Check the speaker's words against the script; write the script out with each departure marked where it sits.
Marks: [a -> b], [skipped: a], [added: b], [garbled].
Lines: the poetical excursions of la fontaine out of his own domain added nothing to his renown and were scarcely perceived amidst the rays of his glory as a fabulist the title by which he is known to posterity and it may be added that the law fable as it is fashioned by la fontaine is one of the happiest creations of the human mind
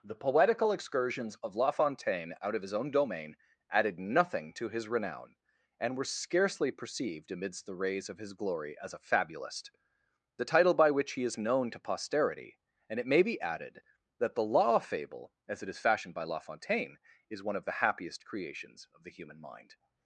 the poetical excursions of la fontaine out of his own domain added nothing to his renown and were scarcely perceived amidst the rays of his glory as a fabulist the title by which he is known to posterity and it may be added that the law fable as it is fashioned by la fontaine is one of the happiest creations of the human mind